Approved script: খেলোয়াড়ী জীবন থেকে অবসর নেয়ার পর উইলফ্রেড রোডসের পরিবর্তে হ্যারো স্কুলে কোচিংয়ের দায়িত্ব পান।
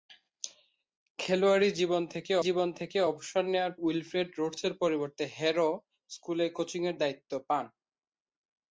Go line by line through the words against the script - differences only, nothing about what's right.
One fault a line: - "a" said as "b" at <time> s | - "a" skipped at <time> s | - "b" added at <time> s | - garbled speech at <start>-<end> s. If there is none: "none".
- "জীবন থেকে" added at 2.5 s
- "পর" skipped at 3.7 s